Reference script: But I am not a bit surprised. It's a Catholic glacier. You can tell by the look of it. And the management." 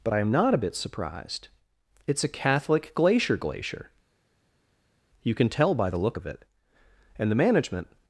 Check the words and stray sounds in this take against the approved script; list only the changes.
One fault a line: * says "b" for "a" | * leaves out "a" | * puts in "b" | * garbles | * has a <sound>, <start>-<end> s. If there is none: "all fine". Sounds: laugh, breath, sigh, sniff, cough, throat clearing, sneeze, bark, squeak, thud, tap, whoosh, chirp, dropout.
* puts in "glacier"